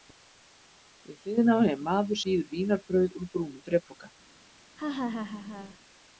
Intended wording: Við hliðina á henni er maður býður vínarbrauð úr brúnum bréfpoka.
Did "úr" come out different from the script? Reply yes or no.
no